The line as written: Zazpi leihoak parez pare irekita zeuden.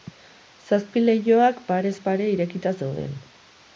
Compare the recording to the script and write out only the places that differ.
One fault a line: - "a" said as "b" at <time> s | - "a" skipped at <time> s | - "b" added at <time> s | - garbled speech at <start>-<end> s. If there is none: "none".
none